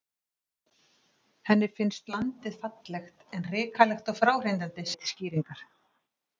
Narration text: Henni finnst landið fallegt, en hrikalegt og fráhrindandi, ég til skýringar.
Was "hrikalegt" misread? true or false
false